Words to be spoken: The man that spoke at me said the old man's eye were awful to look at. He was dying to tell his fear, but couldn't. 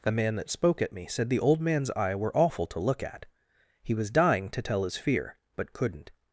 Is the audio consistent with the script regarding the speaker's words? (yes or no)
yes